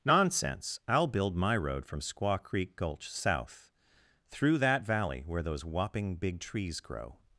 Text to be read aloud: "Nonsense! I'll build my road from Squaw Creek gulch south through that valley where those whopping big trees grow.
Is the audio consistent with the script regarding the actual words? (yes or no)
yes